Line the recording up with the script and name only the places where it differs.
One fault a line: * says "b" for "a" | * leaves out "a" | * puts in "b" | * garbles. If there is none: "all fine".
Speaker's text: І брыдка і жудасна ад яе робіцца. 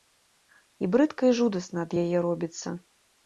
all fine